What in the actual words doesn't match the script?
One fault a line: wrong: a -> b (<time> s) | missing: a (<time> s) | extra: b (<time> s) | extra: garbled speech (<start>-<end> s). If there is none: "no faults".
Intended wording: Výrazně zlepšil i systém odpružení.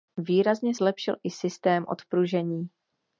no faults